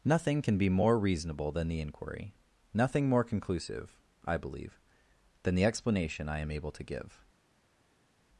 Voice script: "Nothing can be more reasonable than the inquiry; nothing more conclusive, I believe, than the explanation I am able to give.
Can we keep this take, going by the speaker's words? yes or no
yes